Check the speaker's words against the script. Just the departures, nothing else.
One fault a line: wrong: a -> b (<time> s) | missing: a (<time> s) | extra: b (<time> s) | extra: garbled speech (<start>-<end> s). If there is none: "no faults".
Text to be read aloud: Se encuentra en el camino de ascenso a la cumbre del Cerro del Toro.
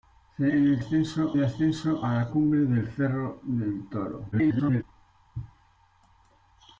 missing: encuentra (0.5 s)
wrong: camino -> ascenso (0.8 s)
extra: garbled speech (4.3-4.8 s)